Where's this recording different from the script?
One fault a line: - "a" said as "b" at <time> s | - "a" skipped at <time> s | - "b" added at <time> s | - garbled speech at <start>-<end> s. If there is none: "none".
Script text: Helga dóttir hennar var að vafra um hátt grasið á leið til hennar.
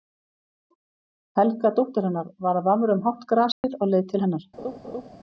none